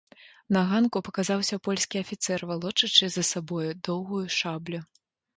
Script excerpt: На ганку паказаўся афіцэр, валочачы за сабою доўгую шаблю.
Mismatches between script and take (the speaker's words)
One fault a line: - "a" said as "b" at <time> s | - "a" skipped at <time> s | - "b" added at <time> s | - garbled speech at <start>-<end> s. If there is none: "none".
- "польскі" added at 1.7 s